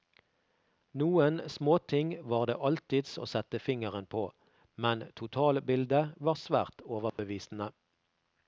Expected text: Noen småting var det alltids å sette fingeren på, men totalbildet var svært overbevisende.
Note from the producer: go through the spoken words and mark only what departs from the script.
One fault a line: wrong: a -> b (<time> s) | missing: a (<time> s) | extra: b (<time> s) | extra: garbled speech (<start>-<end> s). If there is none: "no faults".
no faults